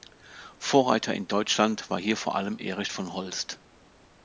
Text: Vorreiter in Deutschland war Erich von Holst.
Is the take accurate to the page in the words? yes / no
no